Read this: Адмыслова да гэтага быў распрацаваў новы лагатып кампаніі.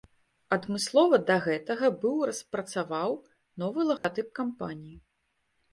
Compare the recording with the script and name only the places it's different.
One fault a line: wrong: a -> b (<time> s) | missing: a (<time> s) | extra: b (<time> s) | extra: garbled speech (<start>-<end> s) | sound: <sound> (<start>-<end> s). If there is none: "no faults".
sound: dropout (4.0-4.0 s)